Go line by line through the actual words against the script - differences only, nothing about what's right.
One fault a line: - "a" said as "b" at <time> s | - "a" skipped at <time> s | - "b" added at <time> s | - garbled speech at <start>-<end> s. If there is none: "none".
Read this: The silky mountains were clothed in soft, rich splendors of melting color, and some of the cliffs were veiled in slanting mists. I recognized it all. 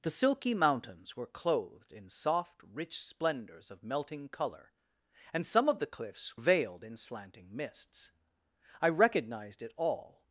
- "were" skipped at 6.4 s